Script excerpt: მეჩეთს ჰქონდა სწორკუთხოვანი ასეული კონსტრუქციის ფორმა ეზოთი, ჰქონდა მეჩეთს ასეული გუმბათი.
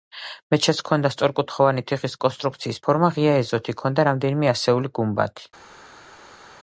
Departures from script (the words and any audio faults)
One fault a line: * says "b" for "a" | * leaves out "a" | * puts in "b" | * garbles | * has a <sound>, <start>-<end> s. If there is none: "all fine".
* says "თიხის" for "ასეული"
* puts in "ღია"
* says "რამდენიმე" for "მეჩეთს"